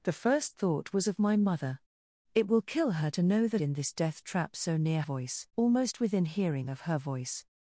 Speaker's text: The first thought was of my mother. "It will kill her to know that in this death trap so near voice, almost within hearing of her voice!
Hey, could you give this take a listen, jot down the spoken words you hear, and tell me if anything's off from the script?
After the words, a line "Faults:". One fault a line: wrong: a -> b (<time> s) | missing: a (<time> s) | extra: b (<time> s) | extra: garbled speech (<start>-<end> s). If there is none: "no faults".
The first thought was of my mother. "It will kill her to know that in this death trap so near voice, almost within hearing of her voice!
Faults:
no faults